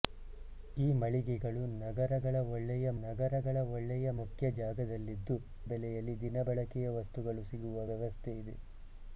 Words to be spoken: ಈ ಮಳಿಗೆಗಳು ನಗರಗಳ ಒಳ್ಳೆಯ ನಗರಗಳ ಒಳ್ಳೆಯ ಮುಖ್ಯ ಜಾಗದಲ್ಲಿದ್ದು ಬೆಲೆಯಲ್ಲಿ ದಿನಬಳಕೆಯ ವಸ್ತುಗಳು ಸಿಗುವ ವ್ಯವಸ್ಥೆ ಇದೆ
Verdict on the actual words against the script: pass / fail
pass